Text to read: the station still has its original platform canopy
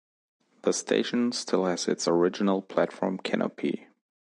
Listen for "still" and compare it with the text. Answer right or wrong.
right